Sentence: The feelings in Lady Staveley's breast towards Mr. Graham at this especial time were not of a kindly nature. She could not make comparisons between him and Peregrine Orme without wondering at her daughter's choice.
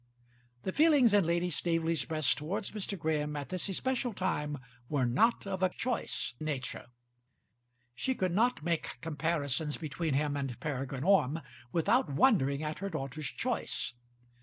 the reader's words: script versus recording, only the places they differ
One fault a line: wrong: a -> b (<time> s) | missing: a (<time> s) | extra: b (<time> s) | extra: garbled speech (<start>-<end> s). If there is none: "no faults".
wrong: kindly -> choice (5.7 s)